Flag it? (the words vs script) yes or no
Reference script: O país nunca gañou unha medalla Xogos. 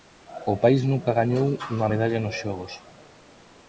yes